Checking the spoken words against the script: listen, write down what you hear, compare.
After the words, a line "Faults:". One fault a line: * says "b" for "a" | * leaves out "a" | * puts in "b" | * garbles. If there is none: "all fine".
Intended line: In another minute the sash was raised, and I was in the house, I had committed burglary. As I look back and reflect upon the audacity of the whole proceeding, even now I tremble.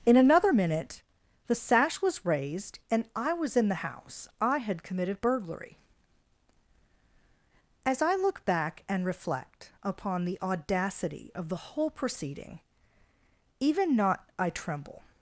In another minute the sash was raised, and I was in the house, I had committed burglary. As I look back and reflect upon the audacity of the whole proceeding, even not I tremble.
Faults:
* says "not" for "now"